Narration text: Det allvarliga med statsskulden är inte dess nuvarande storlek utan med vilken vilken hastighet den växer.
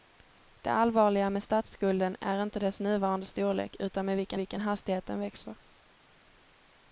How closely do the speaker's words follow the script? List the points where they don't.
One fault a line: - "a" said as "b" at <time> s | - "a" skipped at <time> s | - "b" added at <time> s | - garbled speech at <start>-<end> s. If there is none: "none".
none